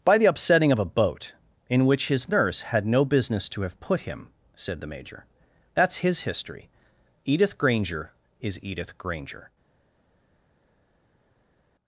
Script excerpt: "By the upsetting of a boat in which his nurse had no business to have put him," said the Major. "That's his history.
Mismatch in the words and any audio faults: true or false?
true